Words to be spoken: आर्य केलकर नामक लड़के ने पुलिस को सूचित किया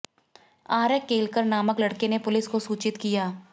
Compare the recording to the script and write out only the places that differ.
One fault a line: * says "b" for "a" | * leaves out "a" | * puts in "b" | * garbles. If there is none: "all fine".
all fine